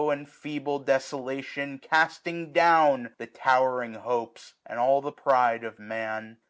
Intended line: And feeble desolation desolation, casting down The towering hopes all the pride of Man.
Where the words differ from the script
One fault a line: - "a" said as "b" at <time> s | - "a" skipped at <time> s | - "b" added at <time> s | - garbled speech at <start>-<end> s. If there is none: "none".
- "desolation" skipped at 1.8 s
- "and" added at 4.7 s